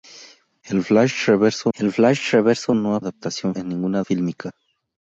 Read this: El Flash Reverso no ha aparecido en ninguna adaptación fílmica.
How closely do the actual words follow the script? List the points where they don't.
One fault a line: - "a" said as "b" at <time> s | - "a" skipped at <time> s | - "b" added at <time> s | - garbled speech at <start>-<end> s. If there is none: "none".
- "el Flash Reverso" added at 1.7 s
- "aparecido" said as "adaptación" at 3.0 s
- "adaptación" skipped at 4.0 s